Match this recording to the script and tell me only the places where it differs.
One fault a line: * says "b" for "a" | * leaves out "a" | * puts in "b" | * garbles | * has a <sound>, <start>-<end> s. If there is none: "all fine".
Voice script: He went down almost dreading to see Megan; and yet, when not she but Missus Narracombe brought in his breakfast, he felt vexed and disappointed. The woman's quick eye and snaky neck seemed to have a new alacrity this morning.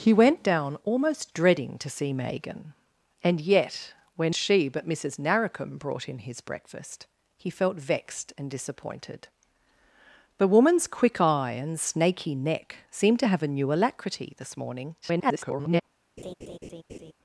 * leaves out "not"
* garbles
* has a laugh, 16.2-17.1 s